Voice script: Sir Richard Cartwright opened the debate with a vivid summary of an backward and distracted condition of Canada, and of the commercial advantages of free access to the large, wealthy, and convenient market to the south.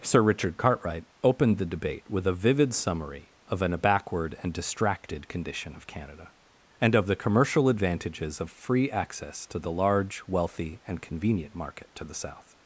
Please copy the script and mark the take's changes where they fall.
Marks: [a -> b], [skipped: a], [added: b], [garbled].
Sir Richard Cartwright opened the debate with a vivid summary of an backward and distracted condition of Canada, and of the commercial advantages of free access to the large, wealthy, and convenient market to the south.